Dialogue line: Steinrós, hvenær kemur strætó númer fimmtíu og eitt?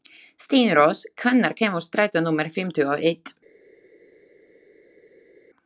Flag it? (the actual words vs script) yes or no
no